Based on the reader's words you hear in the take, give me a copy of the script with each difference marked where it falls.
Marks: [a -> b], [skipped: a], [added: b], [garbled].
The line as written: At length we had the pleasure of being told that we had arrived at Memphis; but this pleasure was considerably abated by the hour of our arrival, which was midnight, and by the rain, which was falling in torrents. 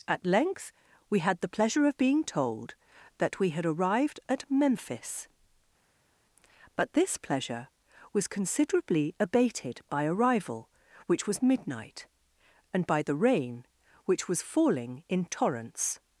At length we had the pleasure of being told that we had arrived at Memphis; but this pleasure was considerably abated by [skipped: the hour of our] arrival, which was midnight, and by the rain, which was falling in torrents.